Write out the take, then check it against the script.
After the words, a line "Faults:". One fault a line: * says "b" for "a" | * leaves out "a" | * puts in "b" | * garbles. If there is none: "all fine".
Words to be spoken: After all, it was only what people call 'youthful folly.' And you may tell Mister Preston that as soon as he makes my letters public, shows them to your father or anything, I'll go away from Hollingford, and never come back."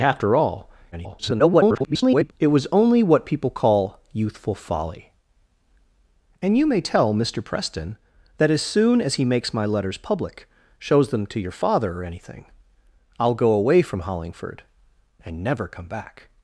After all, [garbled] it was only what people call 'youthful folly.' And you may tell Mister Preston that as soon as he makes my letters public, shows them to your father or anything, I'll go away from Hollingford, and never come back."
Faults:
* garbles